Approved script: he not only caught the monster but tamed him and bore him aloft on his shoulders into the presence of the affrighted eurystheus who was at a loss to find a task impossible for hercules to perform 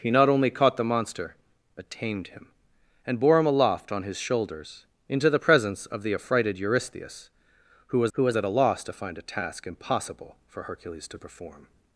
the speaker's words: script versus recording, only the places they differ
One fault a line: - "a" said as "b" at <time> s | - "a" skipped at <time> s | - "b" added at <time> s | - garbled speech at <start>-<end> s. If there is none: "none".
- "who was" added at 8.1 s